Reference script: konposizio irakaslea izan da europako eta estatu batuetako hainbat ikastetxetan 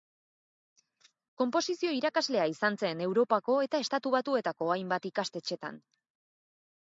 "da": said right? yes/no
no